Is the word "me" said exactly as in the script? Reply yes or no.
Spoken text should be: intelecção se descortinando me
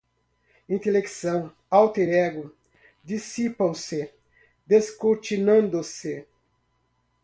no